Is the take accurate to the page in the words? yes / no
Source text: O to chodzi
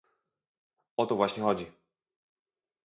no